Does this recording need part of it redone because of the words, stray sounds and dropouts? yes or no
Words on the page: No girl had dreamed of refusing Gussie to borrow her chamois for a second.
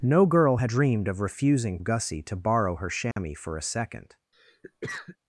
yes